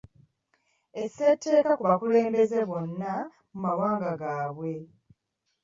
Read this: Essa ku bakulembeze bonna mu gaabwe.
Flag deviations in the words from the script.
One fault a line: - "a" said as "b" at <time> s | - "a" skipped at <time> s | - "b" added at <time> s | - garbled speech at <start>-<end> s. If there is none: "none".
- "etteeka" added at 1.3 s
- "mawanga" added at 3.6 s